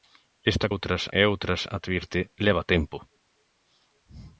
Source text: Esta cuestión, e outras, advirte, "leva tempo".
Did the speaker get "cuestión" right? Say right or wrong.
wrong